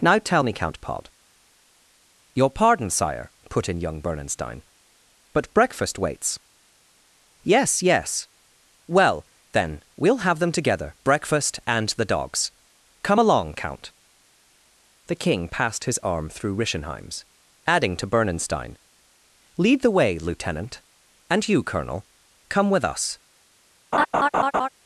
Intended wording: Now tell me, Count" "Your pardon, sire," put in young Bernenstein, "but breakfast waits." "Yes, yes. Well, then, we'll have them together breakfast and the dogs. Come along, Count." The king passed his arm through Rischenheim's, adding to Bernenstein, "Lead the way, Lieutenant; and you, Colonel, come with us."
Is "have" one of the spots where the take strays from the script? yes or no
no